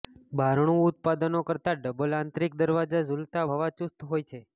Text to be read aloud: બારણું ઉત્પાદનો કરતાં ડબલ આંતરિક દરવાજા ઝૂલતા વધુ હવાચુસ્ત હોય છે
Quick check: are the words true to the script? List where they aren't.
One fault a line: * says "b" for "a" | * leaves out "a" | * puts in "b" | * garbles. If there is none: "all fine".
* leaves out "વધુ"